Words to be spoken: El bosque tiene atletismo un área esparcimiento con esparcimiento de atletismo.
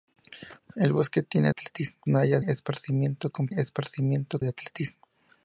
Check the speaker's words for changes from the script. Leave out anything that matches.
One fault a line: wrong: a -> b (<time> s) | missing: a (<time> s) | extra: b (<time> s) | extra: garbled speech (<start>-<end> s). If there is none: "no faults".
no faults